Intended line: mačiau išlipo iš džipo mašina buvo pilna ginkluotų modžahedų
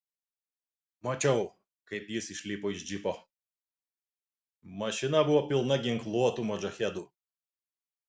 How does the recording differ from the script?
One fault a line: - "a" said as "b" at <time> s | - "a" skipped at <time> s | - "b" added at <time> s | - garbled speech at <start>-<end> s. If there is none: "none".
- "kaip jis" added at 1.9 s